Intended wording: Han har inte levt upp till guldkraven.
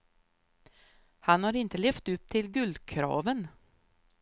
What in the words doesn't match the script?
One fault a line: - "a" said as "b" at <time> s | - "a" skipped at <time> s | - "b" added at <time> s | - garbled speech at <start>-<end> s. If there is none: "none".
none